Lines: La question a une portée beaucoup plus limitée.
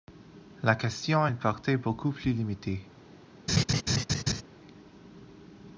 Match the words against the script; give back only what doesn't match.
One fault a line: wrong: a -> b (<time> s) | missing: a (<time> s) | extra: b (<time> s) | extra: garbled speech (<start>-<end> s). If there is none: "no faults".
no faults